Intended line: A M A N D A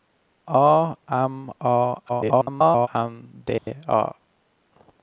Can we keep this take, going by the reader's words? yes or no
no